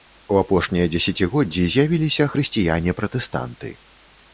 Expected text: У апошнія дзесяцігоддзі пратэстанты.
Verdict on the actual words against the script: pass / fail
fail